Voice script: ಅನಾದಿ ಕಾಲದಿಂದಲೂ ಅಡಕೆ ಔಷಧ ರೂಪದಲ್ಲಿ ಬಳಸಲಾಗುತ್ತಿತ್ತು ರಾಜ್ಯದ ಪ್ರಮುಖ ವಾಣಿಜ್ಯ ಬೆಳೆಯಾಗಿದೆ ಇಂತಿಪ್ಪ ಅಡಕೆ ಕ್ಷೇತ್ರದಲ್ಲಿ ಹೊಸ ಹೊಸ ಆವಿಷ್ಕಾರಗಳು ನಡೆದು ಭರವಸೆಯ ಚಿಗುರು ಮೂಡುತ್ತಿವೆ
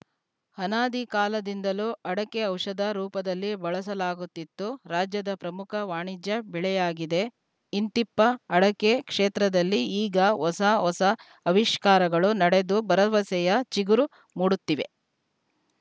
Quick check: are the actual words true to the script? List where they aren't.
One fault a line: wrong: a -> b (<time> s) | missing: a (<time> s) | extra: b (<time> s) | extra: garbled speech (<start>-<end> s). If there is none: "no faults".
extra: ಈಗ (10.0 s)